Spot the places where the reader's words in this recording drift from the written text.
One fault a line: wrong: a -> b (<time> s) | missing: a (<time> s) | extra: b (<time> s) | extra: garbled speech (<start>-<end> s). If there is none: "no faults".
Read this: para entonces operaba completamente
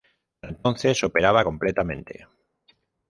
no faults